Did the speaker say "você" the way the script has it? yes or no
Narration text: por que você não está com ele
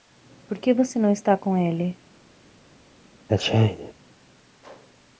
yes